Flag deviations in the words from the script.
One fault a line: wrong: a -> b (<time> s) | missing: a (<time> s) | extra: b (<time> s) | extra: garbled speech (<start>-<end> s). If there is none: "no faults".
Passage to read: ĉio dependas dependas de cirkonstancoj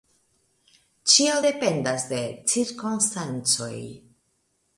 missing: dependas (2.1 s)